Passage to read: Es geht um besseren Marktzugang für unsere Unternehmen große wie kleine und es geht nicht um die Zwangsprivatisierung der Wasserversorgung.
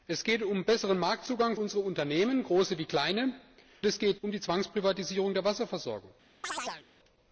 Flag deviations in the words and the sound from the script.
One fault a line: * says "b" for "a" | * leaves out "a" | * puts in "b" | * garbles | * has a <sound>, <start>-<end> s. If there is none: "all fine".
* leaves out "für"
* leaves out "und"
* leaves out "nicht"
* has a chirp, 6.4-6.9 s